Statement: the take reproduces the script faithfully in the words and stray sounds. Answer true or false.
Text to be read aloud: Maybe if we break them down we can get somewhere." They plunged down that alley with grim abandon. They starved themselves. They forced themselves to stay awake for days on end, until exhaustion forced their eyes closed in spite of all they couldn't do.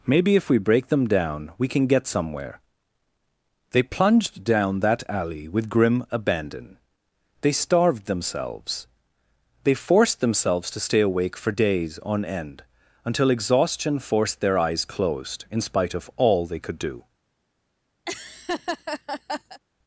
false